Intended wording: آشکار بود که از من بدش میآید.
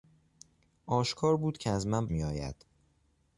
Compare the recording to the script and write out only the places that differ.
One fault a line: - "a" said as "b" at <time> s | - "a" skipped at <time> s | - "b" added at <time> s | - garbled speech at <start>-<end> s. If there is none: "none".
- "بدش" skipped at 2.1 s